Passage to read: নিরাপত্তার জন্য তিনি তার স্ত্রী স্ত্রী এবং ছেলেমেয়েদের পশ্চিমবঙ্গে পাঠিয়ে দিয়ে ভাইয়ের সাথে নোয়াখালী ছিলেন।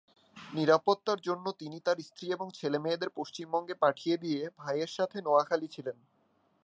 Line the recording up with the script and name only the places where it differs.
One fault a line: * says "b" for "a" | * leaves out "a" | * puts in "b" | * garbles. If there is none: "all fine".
* leaves out "স্ত্রী"